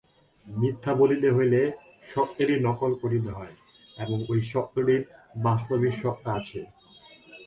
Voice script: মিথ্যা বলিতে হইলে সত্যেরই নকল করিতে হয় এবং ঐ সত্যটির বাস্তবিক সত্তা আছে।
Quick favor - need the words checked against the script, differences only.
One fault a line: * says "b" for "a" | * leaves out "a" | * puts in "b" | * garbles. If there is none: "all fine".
all fine